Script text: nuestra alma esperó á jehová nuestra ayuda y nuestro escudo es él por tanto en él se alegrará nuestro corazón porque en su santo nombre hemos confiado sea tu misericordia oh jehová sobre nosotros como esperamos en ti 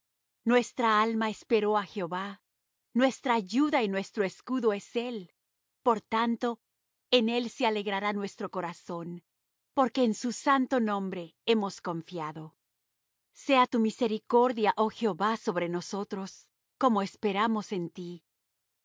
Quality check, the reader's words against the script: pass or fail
pass